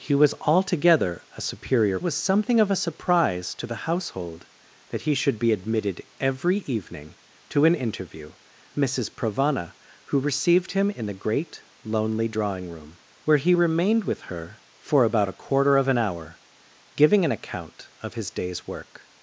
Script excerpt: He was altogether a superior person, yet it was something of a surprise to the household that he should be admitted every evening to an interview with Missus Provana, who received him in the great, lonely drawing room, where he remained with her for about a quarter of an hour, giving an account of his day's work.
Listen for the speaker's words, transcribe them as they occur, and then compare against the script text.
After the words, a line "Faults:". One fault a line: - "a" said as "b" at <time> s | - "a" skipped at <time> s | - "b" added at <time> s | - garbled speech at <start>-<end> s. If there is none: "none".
He was altogether a superior was something of a surprise to the household that he should be admitted every evening to an interview Missus Provana, who received him in the great, lonely drawing room, where he remained with her for about a quarter of an hour, giving an account of his day's work.
Faults:
- "person yet it" skipped at 2.0 s
- "with" skipped at 8.3 s